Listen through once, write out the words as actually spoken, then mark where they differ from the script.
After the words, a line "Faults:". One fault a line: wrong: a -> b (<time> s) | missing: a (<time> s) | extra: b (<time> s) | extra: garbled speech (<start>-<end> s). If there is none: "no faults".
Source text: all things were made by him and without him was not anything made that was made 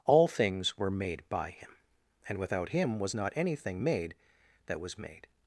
all things were made by him and without him was not anything made that was made
Faults:
no faults